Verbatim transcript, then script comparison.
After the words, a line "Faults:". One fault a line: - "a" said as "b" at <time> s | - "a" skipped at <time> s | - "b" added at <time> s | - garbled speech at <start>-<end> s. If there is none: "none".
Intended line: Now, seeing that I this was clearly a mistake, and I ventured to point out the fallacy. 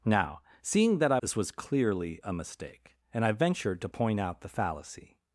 Now, seeing that I this was clearly a mistake, and I ventured to point out the fallacy.
Faults:
none